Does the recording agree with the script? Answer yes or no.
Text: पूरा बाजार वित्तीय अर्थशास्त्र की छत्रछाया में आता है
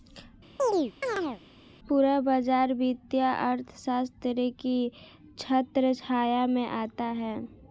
yes